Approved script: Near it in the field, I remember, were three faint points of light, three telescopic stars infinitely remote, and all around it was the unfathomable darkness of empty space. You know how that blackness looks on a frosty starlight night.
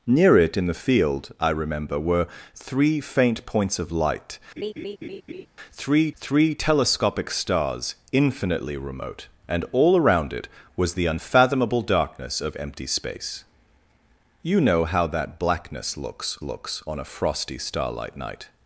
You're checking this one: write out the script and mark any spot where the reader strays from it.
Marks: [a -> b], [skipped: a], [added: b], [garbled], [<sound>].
Near it in the field, I remember, were three faint points of light, [laugh] three [added: three] telescopic stars infinitely remote, and all around it was the unfathomable darkness of empty space. You know how that blackness looks [added: looks] on a frosty starlight night.